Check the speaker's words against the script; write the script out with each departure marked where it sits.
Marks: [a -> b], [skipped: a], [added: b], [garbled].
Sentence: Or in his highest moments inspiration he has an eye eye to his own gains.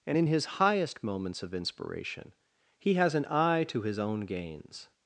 [Or -> And] in his highest moments [added: of] inspiration he has an eye [skipped: eye] to his own gains.